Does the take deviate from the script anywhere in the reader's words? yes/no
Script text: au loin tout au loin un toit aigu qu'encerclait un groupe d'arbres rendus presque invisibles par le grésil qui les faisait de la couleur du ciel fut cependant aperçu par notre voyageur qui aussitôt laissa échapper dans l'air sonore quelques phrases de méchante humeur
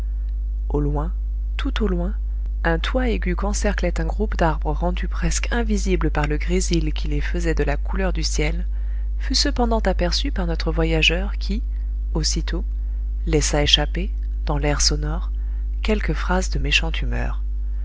no